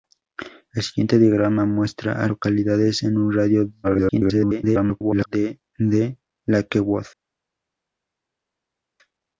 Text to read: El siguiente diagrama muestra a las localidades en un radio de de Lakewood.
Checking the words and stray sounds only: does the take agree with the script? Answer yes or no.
no